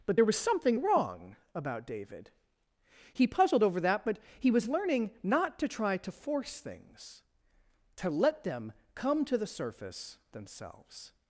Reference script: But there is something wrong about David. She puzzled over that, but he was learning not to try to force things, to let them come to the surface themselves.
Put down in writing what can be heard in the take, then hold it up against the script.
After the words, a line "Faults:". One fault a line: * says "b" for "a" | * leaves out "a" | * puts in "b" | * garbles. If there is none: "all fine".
But there was something wrong about David. He puzzled over that, but he was learning not to try to force things, to let them come to the surface themselves.
Faults:
* says "was" for "is"
* says "He" for "She"